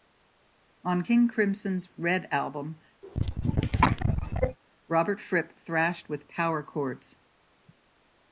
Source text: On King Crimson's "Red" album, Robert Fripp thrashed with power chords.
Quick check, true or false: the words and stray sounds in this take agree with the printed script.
false